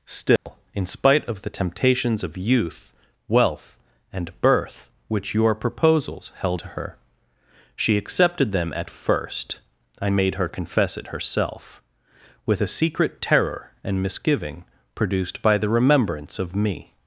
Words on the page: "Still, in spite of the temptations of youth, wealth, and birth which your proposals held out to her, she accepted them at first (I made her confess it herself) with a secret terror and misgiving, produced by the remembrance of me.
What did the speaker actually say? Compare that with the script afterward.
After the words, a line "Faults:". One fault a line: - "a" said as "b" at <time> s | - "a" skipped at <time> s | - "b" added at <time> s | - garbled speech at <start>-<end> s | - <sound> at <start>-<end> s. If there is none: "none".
"Still, in spite of the temptations of youth, wealth, and birth which your proposals held to her, she accepted them at first (I made her confess it herself) with a secret terror and misgiving, produced by the remembrance of me.
Faults:
- dropout at 0.4-0.5 s
- "out" skipped at 6.6 s